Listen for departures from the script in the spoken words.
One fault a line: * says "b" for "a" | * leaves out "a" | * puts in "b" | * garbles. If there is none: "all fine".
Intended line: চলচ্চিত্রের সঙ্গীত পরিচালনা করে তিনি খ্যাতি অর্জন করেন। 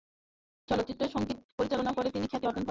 all fine